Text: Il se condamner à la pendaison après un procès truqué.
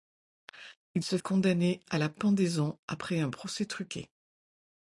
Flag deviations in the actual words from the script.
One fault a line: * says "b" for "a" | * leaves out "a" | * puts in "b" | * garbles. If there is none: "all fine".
all fine